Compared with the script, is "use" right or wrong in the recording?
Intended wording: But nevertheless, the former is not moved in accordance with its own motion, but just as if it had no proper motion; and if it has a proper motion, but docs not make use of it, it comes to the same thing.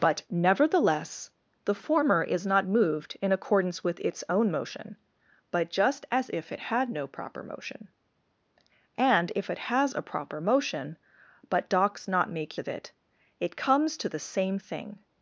wrong